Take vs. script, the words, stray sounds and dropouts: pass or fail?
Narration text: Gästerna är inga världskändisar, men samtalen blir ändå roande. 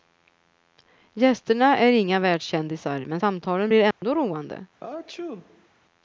fail